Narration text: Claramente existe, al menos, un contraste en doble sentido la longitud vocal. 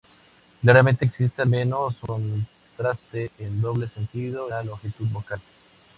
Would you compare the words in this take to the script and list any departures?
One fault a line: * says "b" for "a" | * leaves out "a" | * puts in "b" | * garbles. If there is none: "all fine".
all fine